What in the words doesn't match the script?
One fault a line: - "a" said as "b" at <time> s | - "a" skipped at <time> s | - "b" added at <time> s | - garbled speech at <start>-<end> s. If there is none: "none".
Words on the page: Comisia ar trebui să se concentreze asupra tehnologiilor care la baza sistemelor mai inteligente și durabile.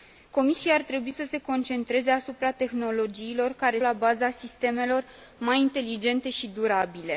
none